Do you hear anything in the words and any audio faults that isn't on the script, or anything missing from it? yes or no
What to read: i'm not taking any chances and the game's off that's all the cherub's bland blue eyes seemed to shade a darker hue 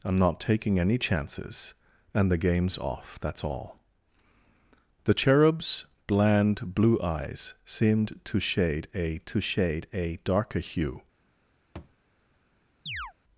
yes